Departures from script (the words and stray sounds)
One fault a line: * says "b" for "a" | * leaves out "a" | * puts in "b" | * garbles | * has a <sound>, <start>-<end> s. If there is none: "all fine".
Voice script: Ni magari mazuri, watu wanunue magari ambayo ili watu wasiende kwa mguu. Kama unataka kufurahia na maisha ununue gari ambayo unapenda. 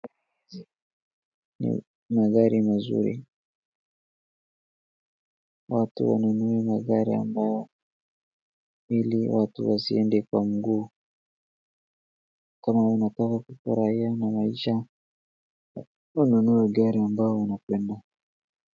all fine